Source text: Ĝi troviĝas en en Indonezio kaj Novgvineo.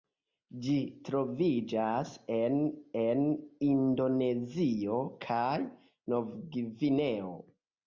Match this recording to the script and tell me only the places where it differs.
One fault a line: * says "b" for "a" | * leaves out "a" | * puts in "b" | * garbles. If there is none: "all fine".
all fine